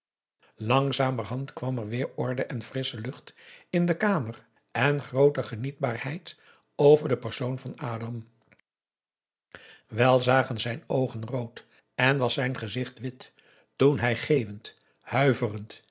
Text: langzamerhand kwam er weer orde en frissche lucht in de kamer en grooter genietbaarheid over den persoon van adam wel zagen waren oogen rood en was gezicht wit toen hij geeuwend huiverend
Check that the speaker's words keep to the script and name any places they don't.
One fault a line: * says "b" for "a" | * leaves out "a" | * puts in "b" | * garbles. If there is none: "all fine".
* says "zijn" for "waren"
* puts in "zijn"